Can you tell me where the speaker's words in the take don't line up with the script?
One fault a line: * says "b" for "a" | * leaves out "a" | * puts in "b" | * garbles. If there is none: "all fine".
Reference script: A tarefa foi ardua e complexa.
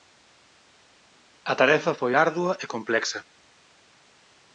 all fine